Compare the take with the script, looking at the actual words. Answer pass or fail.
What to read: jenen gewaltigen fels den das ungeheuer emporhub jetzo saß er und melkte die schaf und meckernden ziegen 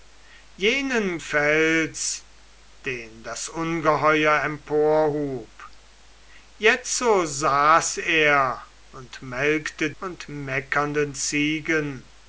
fail